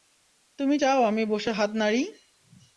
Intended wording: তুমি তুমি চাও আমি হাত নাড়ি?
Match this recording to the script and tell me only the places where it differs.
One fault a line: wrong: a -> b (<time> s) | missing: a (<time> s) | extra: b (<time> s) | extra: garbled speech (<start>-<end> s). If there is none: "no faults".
missing: তুমি (0.8 s)
extra: বসে (1.3 s)